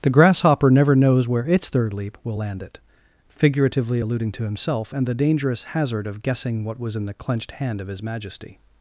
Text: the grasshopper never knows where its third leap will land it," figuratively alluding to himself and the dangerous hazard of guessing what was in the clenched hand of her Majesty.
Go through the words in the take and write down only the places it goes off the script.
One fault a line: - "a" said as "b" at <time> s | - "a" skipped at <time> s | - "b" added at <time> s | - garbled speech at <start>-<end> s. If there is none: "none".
- "her" said as "his" at 7.9 s